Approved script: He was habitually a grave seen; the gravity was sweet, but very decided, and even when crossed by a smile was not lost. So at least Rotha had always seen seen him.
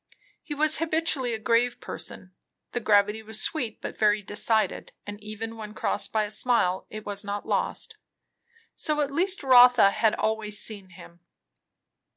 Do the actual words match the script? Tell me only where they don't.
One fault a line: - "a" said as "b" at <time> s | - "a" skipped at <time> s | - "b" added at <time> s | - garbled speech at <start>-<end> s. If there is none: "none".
- "seen" said as "person" at 1.8 s
- "it" added at 6.9 s
- "seen" skipped at 10.9 s